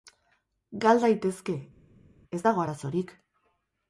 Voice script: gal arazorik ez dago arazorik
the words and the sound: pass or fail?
fail